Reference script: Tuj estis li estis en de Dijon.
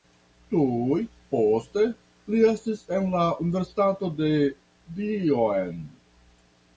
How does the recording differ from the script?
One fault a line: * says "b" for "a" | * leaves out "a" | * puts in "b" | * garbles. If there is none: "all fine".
* says "poste" for "estis"
* puts in "la Universitato"